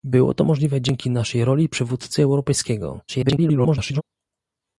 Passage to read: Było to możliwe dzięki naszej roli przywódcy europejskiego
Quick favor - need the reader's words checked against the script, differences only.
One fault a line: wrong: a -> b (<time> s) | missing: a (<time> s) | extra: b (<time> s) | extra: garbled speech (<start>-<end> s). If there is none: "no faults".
extra: garbled speech (3.1-4.0 s)